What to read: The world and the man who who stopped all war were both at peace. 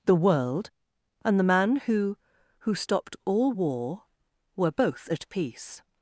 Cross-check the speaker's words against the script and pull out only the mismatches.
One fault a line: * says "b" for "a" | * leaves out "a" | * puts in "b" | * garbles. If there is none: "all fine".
all fine